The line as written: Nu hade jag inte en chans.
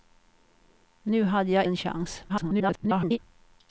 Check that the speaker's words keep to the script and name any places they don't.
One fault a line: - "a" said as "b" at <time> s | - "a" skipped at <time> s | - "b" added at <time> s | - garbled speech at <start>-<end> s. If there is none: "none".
- "inte" skipped at 1.6 s
- garbled speech at 2.3-3.2 s